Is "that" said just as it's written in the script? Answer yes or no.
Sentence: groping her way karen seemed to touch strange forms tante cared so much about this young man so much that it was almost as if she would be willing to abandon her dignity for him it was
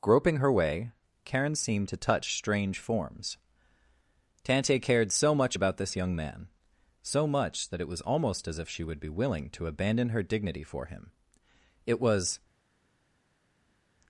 yes